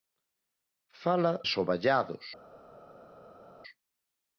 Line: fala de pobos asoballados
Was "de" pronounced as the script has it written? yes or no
no